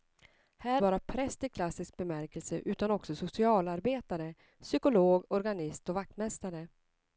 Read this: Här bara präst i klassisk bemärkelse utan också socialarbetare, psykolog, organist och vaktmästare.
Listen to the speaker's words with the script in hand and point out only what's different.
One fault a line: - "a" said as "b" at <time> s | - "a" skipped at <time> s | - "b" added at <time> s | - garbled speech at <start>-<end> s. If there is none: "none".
none